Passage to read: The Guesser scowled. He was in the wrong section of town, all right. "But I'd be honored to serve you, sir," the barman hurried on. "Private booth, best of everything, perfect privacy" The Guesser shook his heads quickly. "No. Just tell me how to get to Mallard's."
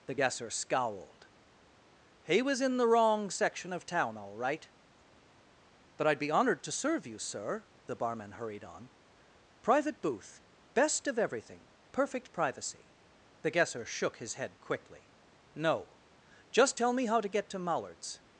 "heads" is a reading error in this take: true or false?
true